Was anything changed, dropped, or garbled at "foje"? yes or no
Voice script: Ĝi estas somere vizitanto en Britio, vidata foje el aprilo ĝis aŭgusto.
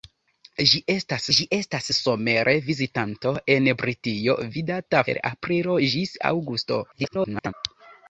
yes